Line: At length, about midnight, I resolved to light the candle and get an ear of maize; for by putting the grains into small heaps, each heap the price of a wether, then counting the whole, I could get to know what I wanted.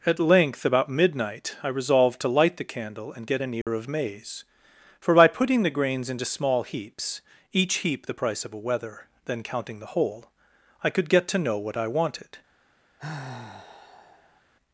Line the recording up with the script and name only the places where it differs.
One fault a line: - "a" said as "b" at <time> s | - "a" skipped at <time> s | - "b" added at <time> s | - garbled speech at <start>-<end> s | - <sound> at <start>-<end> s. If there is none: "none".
- dropout at 3.6-3.7 s
- sigh at 13.0-14.4 s